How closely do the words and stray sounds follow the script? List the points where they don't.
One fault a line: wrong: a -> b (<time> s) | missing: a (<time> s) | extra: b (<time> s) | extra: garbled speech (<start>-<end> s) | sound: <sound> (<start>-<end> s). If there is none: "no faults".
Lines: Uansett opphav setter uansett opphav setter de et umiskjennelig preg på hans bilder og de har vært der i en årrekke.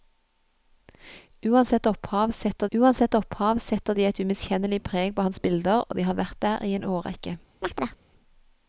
sound: chirp (7.6-8.0 s)